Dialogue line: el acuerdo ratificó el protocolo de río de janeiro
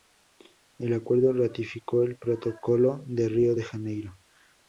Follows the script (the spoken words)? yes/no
yes